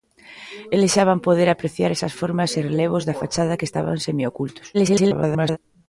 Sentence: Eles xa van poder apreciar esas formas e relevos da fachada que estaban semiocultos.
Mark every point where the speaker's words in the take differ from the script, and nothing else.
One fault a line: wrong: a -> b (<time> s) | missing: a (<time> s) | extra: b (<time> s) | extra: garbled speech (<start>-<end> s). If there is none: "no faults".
extra: garbled speech (4.7-5.6 s)